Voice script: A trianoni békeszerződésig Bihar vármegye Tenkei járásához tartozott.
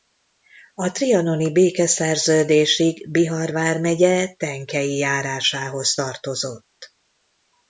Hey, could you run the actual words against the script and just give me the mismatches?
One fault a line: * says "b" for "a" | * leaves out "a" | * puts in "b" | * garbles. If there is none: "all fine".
all fine